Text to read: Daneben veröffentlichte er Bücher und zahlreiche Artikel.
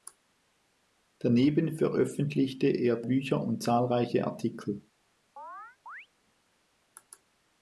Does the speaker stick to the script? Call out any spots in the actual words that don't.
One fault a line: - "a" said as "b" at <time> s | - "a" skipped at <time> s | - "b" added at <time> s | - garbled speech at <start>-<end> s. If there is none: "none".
none